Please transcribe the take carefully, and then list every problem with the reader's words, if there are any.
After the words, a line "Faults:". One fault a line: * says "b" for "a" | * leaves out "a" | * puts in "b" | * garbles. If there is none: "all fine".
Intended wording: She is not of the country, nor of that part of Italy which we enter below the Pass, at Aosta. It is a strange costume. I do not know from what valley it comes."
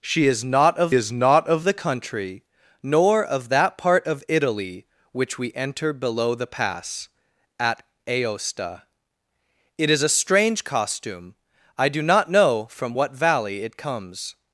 She is not of is not of the country, nor of that part of Italy which we enter below the Pass, at Aosta. It is a strange costume. I do not know from what valley it comes."
Faults:
* puts in "is not of"